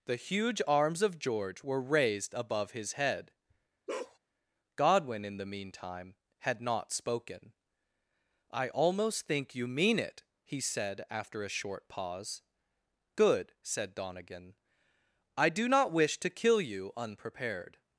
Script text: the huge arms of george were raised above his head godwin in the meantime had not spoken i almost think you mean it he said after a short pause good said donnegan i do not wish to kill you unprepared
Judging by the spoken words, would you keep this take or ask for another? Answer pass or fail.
pass